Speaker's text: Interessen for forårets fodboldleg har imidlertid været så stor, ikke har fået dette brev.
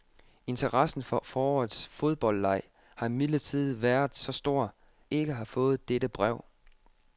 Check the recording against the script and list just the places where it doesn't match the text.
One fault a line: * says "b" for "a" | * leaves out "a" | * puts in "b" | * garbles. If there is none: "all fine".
all fine